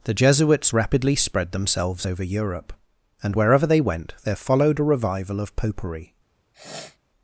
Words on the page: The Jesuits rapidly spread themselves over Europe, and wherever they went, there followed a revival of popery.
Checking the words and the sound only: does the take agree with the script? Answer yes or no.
no